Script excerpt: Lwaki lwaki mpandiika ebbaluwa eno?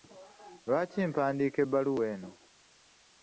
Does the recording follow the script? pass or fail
fail